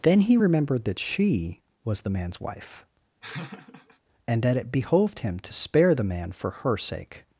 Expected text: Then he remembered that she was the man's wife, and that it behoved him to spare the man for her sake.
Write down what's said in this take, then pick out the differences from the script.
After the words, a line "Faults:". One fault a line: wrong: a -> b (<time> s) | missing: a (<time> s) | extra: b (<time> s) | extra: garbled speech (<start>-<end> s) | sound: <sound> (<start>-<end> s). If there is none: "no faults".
Then he remembered that she was the man's wife, and that it behoved him to spare the man for her sake.
Faults:
sound: laugh (3.2-4.0 s)